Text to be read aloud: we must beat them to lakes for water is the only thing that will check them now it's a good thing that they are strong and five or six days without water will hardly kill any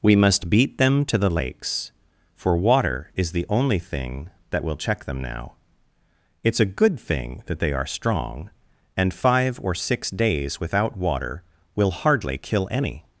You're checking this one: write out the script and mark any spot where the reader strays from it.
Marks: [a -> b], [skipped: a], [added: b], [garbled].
we must beat them to [added: the] lakes for water is the only thing that will check them now it's a good thing that they are strong and five or six days without water will hardly kill any